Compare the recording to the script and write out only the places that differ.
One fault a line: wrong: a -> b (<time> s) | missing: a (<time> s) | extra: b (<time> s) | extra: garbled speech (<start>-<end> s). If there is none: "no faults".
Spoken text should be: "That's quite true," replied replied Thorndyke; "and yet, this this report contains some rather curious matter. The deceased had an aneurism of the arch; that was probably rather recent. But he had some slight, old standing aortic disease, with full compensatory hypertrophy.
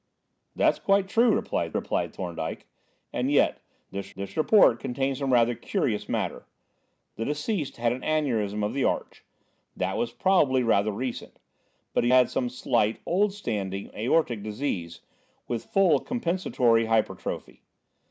no faults